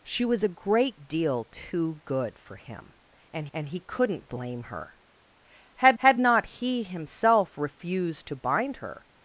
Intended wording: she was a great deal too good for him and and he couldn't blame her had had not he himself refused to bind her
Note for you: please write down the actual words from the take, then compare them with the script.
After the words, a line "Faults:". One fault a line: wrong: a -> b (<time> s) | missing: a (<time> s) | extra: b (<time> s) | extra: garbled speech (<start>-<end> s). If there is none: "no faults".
she was a great deal too good for him and and he couldn't blame her had had not he himself refused to bind her
Faults:
no faults